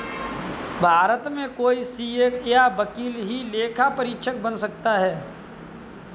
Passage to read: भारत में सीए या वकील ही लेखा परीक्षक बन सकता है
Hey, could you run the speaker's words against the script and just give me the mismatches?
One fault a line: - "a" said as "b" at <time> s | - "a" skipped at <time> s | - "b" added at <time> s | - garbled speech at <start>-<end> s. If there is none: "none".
- "कोई" added at 1.6 s